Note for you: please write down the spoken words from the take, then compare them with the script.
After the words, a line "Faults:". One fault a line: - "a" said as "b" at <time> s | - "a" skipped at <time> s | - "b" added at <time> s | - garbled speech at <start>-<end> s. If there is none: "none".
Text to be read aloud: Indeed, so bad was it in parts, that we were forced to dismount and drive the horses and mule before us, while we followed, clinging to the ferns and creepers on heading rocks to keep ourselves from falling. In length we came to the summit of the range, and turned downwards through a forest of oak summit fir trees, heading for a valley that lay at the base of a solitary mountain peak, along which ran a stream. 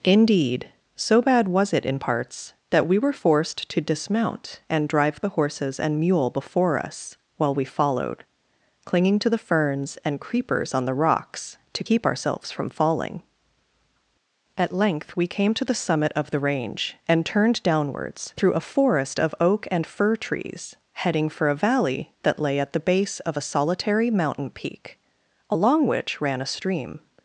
Indeed, so bad was it in parts, that we were forced to dismount and drive the horses and mule before us, while we followed, clinging to the ferns and creepers on the rocks to keep ourselves from falling. At length we came to the summit of the range, and turned downwards through a forest of oak and fir trees, heading for a valley that lay at the base of a solitary mountain peak, along which ran a stream.
Faults:
- "heading" said as "the" at 10.8 s
- "In" said as "At" at 14.6 s
- "summit" said as "and" at 19.7 s